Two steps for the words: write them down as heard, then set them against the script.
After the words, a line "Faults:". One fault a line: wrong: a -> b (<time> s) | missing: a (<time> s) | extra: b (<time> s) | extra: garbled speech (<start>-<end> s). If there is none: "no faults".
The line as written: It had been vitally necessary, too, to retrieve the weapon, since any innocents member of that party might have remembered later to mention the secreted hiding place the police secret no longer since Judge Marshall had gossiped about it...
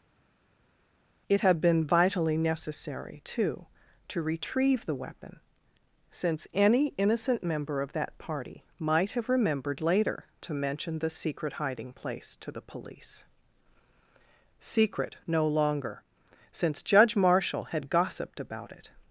It had been vitally necessary, too, to retrieve the weapon, since any innocent member of that party might have remembered later to mention the secret hiding place to the police secret no longer since Judge Marshall had gossiped about it...
Faults:
wrong: innocents -> innocent (7.0 s)
wrong: secreted -> secret (11.1 s)
extra: to (12.4 s)